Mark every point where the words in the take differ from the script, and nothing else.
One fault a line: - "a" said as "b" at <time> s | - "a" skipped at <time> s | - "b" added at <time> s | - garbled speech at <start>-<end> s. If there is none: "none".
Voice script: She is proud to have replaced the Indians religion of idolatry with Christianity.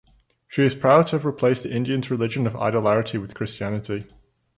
none